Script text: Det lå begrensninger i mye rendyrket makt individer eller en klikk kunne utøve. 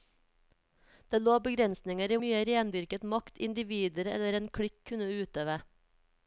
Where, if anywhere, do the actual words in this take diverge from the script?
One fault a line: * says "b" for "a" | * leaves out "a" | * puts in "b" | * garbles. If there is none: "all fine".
all fine